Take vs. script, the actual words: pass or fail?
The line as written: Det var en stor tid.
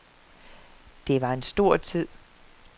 pass